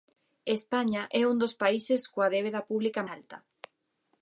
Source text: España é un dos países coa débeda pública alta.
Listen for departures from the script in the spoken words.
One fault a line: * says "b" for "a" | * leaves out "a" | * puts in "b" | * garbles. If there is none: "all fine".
all fine